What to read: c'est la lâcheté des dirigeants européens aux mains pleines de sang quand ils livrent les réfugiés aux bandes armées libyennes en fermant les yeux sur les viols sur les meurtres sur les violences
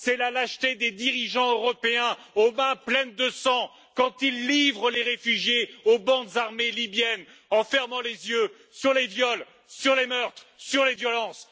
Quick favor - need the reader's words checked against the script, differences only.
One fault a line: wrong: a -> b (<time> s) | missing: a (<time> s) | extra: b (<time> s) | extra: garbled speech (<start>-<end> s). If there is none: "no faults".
no faults